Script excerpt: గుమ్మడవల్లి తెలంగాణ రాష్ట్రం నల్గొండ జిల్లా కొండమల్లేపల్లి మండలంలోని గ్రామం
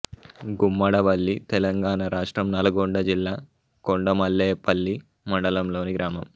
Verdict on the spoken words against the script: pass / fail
pass